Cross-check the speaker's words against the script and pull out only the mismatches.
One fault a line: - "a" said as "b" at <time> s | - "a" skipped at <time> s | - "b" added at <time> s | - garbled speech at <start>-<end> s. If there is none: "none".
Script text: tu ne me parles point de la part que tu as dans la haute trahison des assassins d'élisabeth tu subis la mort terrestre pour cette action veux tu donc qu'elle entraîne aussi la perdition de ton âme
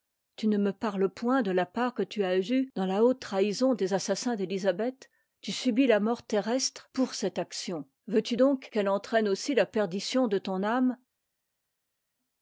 - "eue" added at 2.4 s